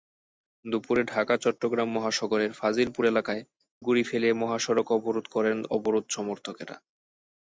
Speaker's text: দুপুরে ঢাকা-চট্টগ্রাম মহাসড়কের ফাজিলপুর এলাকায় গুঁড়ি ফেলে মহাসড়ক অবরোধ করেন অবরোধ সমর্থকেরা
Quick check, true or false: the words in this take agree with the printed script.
true